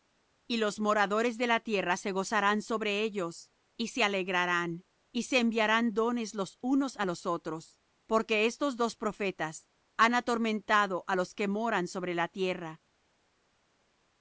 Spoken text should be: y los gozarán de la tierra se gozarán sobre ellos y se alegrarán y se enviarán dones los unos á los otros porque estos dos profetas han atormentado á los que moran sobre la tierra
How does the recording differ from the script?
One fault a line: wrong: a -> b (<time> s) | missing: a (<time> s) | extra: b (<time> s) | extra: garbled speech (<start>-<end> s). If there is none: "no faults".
wrong: gozarán -> moradores (0.8 s)